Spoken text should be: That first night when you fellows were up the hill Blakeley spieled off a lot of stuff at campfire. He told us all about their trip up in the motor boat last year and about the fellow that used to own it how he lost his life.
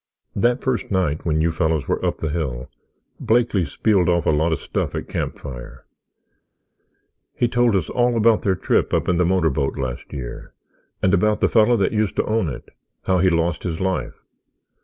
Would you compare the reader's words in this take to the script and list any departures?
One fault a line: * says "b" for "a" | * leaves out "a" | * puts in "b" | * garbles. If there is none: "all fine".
all fine